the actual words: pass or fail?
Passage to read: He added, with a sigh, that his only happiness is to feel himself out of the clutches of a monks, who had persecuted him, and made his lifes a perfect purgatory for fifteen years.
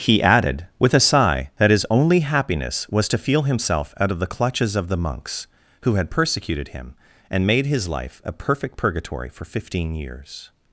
fail